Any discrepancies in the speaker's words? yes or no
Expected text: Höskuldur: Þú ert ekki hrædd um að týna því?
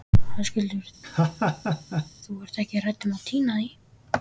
no